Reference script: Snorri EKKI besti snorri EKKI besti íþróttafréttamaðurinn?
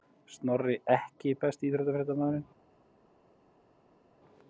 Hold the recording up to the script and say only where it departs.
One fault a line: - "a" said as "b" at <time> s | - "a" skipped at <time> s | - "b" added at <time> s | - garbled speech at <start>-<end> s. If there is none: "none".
- "snorri EKKI besti" skipped at 1.7 s